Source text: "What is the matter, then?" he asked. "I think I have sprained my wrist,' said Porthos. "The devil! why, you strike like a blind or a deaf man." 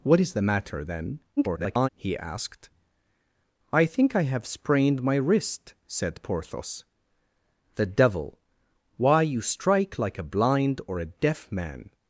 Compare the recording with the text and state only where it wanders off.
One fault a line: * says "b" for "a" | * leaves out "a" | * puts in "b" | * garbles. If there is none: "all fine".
* garbles